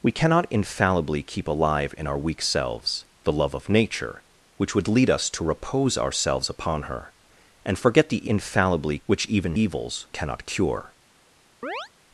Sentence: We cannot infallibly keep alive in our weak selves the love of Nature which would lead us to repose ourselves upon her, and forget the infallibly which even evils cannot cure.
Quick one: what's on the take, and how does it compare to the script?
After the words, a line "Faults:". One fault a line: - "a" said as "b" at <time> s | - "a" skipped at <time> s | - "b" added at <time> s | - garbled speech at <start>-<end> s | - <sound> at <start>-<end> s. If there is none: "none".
We cannot infallibly keep alive in our weak selves the love of Nature which would lead us to repose ourselves upon her, and forget the infallibly which even evils cannot cure.
Faults:
- chirp at 11.6-11.9 s